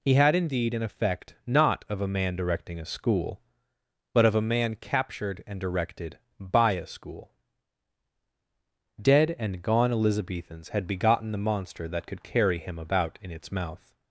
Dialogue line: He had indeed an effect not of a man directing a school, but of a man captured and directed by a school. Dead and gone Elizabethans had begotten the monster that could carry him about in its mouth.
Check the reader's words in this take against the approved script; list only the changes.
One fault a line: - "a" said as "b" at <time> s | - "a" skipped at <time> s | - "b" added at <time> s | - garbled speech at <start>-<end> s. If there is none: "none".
none